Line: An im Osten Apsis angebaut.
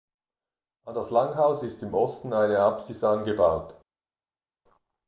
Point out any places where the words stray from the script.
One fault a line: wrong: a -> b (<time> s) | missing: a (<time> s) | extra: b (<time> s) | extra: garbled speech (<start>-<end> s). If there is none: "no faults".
extra: das Langhaus ist (0.9 s)
extra: eine (2.3 s)